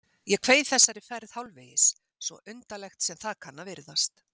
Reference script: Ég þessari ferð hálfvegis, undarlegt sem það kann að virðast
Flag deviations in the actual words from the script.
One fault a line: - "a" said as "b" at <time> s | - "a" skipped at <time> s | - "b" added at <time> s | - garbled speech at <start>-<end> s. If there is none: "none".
- "kveið" added at 0.5 s
- "svo" added at 2.3 s